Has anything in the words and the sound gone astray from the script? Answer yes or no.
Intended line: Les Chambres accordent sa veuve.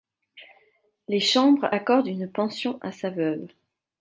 yes